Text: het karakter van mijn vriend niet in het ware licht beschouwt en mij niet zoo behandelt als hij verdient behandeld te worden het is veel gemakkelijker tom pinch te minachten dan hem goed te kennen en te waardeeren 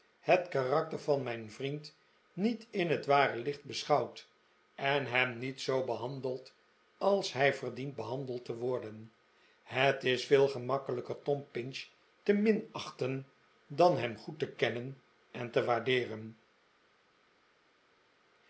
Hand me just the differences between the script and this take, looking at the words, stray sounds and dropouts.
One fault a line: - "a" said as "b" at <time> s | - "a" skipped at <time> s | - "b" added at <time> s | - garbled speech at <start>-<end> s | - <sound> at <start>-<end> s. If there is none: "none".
- "mij" said as "hem" at 5.0 s